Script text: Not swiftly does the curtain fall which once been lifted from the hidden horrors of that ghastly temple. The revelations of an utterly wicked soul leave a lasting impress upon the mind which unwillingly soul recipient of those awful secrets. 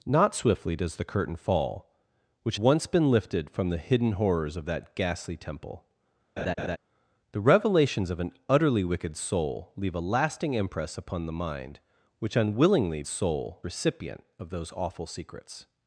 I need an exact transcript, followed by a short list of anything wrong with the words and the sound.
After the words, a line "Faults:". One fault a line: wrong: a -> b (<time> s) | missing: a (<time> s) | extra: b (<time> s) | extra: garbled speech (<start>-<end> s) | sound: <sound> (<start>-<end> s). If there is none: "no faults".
Not swiftly does the curtain fall which once been lifted from the hidden horrors of that ghastly temple. The revelations of an utterly wicked soul leave a lasting impress upon the mind which unwillingly soul recipient of those awful secrets.
Faults:
sound: laugh (6.4-6.8 s)